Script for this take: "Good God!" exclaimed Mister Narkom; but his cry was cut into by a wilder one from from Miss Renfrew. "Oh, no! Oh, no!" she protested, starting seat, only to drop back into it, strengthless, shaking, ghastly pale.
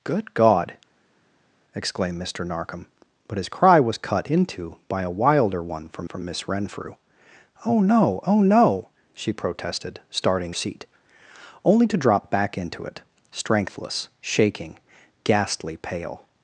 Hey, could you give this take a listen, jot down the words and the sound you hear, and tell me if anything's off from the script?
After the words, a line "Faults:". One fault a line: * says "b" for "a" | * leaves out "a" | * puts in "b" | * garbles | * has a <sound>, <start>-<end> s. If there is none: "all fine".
"Good God!" exclaimed Mister Narkom; but his cry was cut into by a wilder one from from Miss Renfrew. "Oh, no! Oh, no!" she protested, starting seat, only to drop back into it, strengthless, shaking, ghastly pale.
Faults:
all fine